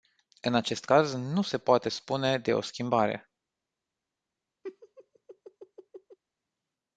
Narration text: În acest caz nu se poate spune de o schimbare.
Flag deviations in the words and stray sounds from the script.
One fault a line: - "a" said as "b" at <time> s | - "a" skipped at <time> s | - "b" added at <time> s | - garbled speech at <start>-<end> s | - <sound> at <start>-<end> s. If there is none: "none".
- laugh at 4.6-6.2 s